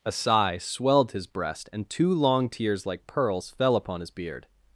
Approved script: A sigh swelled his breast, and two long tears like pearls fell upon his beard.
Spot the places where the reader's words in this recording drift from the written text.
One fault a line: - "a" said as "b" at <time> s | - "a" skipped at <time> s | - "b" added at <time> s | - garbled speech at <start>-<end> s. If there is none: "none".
none